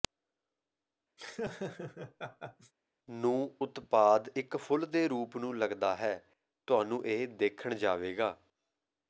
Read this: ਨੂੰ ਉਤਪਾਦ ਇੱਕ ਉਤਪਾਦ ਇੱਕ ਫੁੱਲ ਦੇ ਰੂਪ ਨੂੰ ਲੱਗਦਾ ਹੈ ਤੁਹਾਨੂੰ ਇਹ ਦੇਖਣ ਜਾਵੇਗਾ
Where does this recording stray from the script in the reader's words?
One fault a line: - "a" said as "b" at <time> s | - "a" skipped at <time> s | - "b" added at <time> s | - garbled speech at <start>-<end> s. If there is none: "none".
- "ਉਤਪਾਦ ਇੱਕ" skipped at 4.6 s